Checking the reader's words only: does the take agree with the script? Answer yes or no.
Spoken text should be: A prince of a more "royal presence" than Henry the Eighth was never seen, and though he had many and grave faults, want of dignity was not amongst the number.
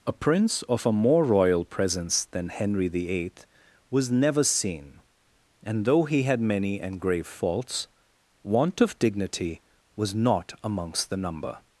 yes